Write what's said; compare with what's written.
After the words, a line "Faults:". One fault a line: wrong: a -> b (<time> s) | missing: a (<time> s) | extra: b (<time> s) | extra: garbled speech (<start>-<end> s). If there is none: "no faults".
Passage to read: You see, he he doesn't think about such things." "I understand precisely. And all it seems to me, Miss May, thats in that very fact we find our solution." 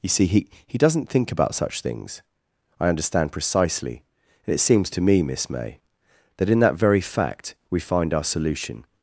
You see, he he doesn't think about such things." "I understand precisely. And it seems to me, Miss May, that in that very fact we find our solution."
Faults:
missing: all (4.5 s)
wrong: thats -> that (6.4 s)